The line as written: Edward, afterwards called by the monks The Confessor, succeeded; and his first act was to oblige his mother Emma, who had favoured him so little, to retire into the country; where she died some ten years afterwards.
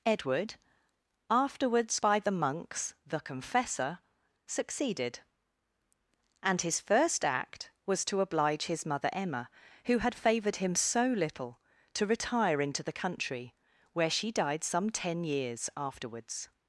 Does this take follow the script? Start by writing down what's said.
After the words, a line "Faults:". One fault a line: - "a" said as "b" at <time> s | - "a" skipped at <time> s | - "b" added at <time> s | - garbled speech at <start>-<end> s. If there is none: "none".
Edward, afterwards by the monks The Confessor, succeeded; and his first act was to oblige his mother Emma, who had favoured him so little, to retire into the country; where she died some ten years afterwards.
Faults:
- "called" skipped at 2.0 s